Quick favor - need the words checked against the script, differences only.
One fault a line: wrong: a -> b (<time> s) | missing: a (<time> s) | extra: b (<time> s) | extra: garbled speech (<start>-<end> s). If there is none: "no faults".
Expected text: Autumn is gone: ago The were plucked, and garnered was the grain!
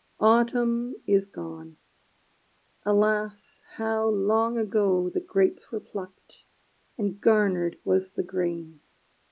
extra: alas how long (2.8 s)
extra: grapes (5.2 s)